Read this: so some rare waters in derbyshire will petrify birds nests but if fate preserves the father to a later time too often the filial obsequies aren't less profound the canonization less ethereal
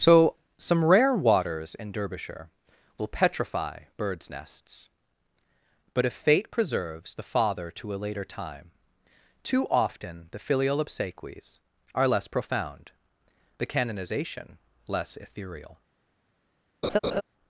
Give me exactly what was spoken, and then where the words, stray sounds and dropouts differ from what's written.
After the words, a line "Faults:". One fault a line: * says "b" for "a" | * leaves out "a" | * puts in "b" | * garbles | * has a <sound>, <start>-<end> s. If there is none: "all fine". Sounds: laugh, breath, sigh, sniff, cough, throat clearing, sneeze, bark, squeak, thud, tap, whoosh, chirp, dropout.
so some rare waters in derbyshire will petrify birds nests but if fate preserves the father to a later time too often the filial obsequies are less profound the canonization less ethereal
Faults:
* says "are" for "aren't"
* has a laugh, 16.8-17.2 s